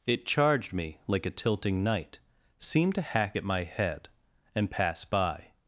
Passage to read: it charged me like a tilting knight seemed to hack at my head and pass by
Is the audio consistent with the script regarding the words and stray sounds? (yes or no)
yes